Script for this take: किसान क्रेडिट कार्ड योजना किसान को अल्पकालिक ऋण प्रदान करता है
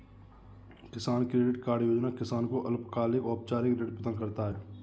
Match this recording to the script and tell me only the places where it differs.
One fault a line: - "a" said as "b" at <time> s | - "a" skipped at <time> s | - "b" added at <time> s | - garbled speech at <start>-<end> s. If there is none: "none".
- "औपचारिक" added at 3.2 s